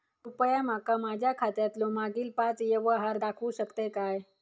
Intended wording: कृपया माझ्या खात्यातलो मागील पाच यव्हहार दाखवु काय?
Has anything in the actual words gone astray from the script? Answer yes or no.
yes